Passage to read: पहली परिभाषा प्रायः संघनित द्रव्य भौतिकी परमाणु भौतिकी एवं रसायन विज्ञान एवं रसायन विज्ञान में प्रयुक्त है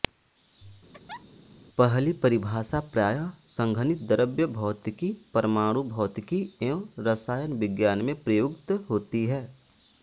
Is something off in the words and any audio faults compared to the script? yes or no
yes